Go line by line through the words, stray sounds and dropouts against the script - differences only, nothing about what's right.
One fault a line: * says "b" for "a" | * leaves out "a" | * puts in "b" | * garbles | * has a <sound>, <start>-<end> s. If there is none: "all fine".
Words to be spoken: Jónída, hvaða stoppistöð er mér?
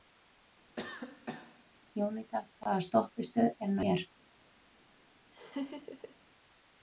* has a cough, 0.8-1.6 s
* has a laugh, 5.3-6.2 s